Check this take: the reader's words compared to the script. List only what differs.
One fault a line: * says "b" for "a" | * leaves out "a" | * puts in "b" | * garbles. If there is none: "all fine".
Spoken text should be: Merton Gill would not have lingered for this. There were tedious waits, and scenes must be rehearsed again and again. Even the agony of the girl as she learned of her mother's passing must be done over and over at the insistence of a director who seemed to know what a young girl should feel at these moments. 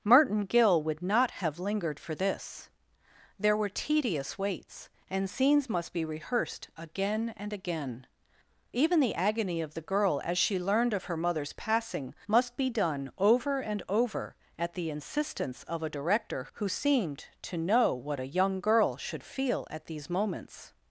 all fine